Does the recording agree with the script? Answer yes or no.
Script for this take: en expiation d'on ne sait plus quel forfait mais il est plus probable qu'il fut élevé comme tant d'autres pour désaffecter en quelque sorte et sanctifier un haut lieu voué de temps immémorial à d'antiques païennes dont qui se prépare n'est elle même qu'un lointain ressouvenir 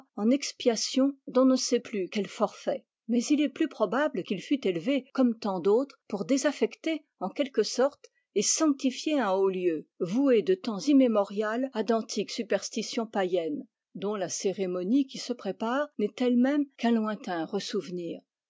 no